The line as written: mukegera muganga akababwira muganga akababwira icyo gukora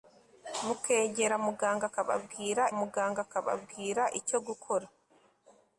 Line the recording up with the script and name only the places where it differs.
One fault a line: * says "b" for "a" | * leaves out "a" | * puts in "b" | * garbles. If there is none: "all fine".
all fine